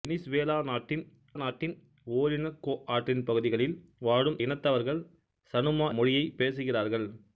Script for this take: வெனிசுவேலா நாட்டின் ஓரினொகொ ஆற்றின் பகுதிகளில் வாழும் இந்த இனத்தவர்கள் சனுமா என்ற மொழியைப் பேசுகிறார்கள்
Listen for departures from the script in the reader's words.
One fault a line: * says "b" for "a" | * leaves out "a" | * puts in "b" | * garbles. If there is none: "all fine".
* puts in "நாட்டின்"
* leaves out "இந்த"
* leaves out "என்ற"